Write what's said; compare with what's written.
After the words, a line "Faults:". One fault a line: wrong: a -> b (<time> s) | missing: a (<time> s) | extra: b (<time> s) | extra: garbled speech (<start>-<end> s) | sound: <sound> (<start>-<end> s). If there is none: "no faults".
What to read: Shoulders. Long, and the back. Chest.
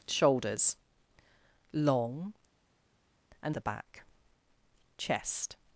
Shoulders. Long, and the back. Chest.
Faults:
no faults